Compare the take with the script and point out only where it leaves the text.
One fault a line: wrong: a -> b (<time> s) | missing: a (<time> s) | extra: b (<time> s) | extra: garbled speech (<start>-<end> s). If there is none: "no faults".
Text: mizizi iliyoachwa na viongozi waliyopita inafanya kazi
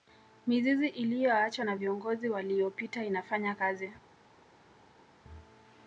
no faults